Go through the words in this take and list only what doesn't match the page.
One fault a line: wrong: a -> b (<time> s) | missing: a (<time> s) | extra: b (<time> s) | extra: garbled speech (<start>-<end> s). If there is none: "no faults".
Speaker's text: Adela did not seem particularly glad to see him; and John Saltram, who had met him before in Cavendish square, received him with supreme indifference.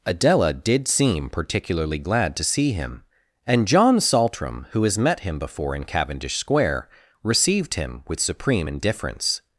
missing: not (0.9 s)
wrong: had -> has (4.8 s)